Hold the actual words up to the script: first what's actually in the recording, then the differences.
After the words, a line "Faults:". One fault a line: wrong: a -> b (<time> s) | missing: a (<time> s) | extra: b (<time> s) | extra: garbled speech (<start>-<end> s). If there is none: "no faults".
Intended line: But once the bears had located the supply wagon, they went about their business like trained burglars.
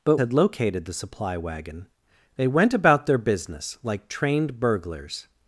But had located the supply wagon, they went about their business like trained burglars.
Faults:
missing: once the bears (0.2 s)